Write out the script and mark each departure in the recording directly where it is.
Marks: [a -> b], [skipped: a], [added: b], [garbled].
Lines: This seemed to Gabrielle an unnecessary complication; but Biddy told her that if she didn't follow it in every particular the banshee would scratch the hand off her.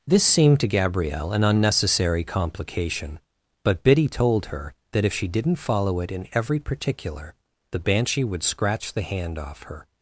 This seemed to Gabrielle an unnecessary complication; but Biddy told her that if she didn't follow it in every particular the banshee would scratch the hand off her.